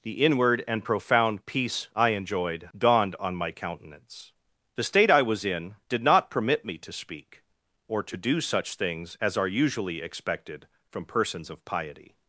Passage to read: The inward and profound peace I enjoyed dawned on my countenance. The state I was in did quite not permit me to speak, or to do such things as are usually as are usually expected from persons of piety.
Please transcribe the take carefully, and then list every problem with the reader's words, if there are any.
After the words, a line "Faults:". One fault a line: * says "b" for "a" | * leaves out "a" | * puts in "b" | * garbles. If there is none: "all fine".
The inward and profound peace I enjoyed dawned on my countenance. The state I was in did not permit me to speak, or to do such things as are usually expected from persons of piety.
Faults:
* leaves out "quite"
* leaves out "as are usually"